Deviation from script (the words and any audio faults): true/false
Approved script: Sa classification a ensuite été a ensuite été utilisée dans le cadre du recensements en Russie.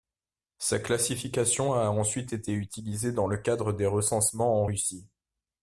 true